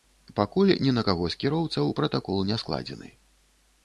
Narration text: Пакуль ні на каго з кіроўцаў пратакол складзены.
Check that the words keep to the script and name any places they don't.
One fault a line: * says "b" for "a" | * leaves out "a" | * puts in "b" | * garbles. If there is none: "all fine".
* puts in "не"